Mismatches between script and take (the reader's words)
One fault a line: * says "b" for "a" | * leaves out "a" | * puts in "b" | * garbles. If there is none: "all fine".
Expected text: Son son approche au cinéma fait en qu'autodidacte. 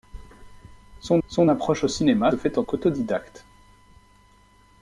all fine